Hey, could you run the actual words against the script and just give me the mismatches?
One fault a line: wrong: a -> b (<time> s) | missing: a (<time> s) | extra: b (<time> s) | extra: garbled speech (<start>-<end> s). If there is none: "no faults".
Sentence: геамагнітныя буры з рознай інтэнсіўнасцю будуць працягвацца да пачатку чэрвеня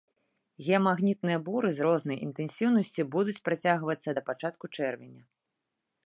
no faults